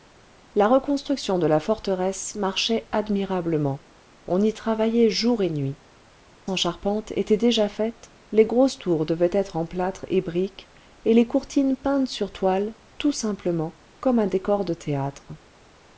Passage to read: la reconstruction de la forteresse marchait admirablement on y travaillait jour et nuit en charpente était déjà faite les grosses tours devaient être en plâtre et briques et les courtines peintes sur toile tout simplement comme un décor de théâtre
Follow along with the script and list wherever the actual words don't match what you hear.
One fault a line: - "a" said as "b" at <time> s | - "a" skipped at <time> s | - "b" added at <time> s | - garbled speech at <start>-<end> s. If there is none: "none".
none